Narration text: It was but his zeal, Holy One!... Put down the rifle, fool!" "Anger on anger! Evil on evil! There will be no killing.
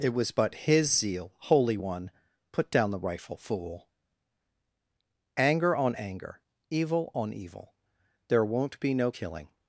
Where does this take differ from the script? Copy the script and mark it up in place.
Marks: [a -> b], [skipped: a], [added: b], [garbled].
It was but his zeal, Holy One!... Put down the rifle, fool!" "Anger on anger! Evil on evil! There [will -> won't] be no killing.